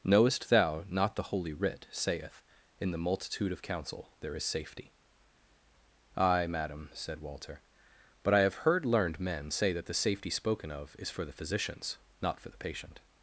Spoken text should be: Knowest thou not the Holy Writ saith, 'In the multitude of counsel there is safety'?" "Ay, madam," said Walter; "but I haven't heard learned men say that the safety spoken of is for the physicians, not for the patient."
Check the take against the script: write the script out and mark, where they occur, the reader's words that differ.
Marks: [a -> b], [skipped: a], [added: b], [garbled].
Knowest thou not the Holy Writ saith, 'In the multitude of counsel there is safety'?" "Ay, madam," said Walter; "but I [haven't -> have] heard learned men say that the safety spoken of is for the physicians, not for the patient."